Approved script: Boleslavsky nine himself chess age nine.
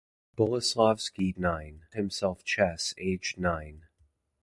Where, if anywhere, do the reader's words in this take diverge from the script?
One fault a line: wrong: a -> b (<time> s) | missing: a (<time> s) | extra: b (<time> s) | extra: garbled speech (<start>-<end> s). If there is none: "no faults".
no faults